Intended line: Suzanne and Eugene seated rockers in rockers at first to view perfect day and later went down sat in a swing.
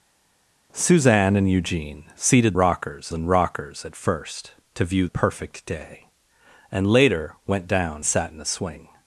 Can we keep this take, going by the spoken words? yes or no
yes